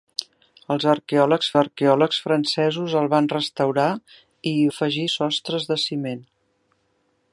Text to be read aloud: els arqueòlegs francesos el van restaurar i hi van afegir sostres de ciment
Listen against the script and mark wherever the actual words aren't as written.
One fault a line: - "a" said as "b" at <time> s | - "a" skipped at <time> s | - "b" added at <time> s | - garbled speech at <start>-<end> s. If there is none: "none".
- "arqueòlegs" added at 1.6 s
- "van" skipped at 4.6 s